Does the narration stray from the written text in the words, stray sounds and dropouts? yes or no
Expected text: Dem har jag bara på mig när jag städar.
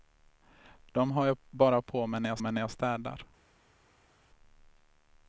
yes